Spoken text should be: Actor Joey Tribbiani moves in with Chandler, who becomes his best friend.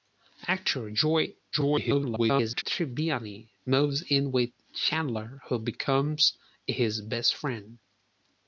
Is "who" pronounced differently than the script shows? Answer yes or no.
no